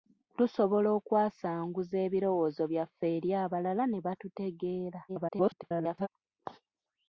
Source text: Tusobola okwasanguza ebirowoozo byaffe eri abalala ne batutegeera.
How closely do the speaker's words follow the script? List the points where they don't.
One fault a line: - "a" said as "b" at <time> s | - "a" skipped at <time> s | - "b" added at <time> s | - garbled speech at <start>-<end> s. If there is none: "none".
- garbled speech at 5.1-6.1 s